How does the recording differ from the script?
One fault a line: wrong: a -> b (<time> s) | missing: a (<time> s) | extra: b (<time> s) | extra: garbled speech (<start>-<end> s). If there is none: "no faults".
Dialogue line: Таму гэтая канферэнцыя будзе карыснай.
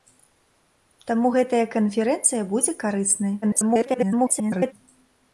extra: garbled speech (3.4-4.7 s)